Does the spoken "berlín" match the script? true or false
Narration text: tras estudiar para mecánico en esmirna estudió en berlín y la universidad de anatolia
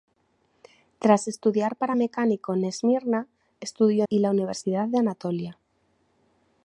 false